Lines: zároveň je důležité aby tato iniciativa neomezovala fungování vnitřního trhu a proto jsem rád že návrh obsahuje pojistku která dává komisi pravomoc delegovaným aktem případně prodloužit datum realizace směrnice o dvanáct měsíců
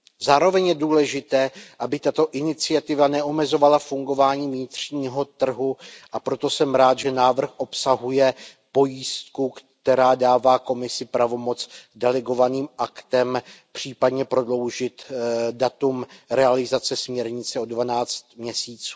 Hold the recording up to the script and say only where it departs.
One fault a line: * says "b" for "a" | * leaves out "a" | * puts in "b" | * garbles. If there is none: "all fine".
all fine